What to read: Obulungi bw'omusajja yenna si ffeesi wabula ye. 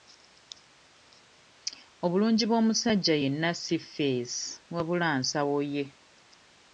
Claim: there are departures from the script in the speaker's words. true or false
true